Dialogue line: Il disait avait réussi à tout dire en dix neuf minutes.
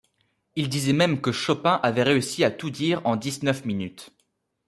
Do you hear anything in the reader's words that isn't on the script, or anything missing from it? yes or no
yes